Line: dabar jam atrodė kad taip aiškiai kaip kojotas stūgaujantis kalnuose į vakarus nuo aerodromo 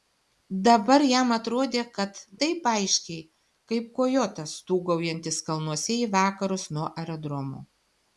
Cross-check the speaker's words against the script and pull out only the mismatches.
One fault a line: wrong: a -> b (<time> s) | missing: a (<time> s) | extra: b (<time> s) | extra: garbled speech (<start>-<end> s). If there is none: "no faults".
no faults